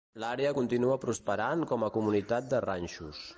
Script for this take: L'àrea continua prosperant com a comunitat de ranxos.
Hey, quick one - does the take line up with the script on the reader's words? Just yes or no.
yes